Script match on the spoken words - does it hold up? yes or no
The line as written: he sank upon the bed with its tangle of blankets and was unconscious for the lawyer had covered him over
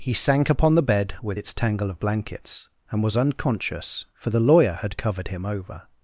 yes